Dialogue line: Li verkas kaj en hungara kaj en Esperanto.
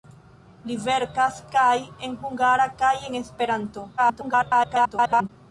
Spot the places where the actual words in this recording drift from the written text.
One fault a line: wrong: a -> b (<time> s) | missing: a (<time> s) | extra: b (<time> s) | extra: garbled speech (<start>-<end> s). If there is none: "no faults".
extra: garbled speech (4.0-5.3 s)